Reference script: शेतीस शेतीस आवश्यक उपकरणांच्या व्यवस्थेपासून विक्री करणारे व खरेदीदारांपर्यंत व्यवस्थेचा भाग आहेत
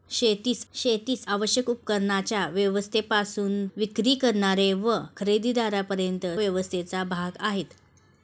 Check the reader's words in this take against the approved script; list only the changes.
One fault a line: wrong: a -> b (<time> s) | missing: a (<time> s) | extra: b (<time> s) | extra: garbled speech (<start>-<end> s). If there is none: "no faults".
no faults